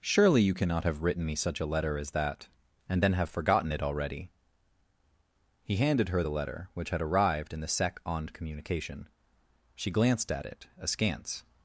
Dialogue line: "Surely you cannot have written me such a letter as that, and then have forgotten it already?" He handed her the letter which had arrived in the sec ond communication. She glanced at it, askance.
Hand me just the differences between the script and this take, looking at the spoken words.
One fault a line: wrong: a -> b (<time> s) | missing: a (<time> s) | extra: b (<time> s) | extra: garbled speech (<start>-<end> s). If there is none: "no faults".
no faults